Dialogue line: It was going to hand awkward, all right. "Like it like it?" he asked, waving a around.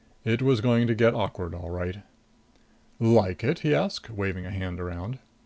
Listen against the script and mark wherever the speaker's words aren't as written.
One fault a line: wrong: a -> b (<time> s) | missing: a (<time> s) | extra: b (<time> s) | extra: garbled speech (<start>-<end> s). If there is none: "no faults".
wrong: hand -> get (0.9 s)
missing: like it (3.6 s)
extra: hand (4.5 s)